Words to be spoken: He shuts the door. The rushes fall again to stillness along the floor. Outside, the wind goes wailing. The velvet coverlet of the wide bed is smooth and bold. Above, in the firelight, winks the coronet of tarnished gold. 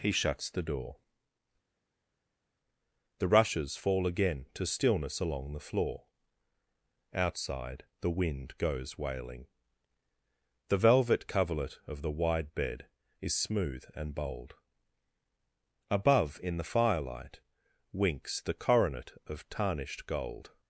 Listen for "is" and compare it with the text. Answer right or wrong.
right